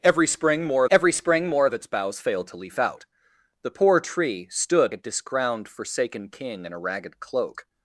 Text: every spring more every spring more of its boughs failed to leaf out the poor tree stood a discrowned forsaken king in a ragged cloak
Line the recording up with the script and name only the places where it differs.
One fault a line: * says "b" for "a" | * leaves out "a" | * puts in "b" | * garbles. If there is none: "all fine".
all fine